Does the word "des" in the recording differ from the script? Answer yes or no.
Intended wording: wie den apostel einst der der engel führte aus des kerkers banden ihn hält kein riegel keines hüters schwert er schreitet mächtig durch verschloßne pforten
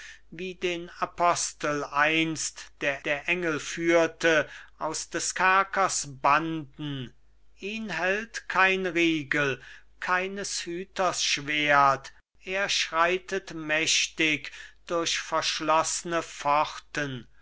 no